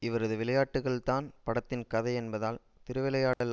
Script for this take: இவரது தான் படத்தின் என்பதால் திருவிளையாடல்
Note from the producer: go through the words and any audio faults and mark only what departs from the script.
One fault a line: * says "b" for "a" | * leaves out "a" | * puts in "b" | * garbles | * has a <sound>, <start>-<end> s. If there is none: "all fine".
* puts in "விளையாட்டுக்கள்"
* puts in "கதை"
* has a dropout, 3.3-3.4 s